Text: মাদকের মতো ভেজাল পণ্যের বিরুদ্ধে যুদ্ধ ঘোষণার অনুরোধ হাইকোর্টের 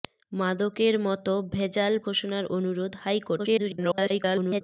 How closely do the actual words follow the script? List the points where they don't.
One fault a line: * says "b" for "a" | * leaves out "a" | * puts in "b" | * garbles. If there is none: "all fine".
* leaves out "পণ্যের বিরুদ্ধে যুদ্ধ"
* garbles